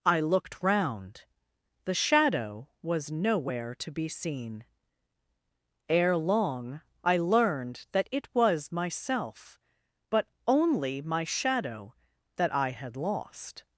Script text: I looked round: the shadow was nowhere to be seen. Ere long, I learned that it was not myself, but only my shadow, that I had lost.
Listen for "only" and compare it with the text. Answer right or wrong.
right